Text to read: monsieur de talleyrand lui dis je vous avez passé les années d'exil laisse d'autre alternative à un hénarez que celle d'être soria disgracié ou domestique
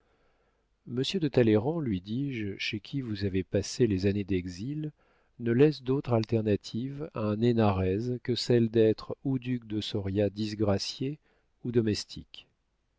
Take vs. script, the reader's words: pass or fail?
fail